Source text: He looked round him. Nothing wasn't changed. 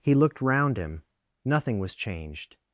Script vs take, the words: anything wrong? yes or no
yes